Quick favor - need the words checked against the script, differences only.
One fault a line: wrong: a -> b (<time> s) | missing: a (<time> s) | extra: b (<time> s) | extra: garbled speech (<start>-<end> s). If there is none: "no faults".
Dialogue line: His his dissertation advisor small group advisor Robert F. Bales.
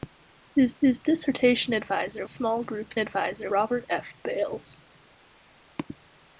no faults